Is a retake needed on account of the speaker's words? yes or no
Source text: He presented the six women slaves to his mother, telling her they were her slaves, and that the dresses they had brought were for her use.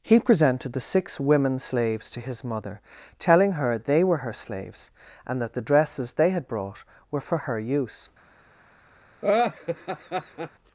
no